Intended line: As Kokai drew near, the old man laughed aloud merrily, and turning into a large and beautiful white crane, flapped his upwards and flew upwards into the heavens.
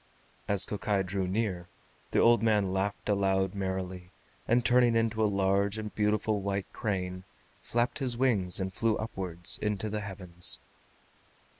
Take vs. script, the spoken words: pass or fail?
fail